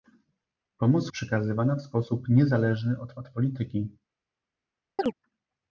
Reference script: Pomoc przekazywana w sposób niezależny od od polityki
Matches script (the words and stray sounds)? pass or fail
fail